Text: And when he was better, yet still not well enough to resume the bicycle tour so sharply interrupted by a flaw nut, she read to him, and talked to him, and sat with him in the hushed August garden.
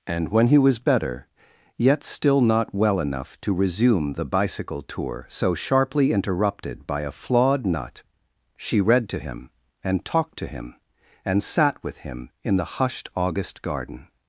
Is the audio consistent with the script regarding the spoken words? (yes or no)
no